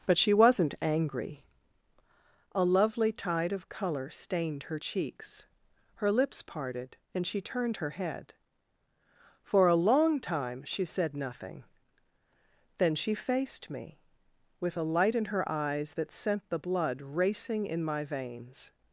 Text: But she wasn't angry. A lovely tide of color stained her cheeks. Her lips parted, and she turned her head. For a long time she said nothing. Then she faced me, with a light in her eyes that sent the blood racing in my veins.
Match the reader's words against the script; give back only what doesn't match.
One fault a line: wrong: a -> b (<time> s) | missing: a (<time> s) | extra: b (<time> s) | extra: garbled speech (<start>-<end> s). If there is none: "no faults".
no faults